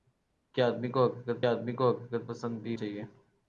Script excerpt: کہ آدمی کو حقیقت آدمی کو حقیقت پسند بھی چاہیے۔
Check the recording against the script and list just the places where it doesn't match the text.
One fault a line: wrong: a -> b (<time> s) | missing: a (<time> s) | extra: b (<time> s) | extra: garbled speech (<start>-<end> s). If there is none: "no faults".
no faults